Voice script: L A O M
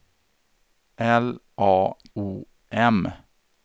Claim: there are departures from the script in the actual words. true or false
false